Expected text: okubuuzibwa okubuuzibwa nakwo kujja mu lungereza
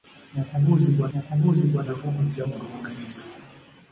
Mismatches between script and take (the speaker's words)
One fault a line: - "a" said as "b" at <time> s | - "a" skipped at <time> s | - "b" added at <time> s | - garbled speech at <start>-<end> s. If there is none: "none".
none